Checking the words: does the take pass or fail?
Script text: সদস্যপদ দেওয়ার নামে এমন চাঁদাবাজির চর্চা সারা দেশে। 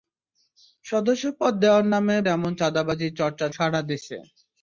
pass